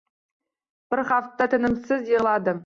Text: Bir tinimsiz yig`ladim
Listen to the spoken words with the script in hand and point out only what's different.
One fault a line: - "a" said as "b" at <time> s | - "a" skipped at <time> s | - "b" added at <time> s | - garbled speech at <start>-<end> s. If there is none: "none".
- "hafta" added at 1.1 s